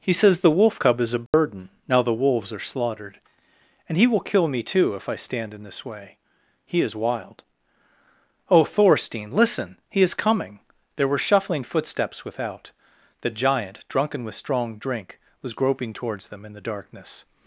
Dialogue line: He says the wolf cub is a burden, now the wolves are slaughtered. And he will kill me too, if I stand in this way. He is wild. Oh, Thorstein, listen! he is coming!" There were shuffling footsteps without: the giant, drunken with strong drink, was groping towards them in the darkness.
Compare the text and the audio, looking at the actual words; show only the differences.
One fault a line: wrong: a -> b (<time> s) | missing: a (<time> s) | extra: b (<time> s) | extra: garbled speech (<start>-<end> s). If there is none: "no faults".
no faults